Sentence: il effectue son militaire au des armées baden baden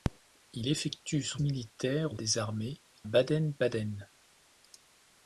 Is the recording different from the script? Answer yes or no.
no